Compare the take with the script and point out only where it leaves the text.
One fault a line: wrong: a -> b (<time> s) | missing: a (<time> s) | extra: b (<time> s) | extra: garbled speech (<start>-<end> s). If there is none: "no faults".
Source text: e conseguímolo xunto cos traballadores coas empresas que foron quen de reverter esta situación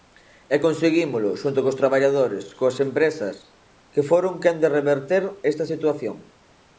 no faults